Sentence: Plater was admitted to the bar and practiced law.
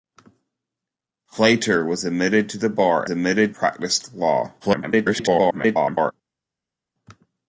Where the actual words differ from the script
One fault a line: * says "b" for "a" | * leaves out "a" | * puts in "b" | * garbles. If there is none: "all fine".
* says "admitted" for "and"
* garbles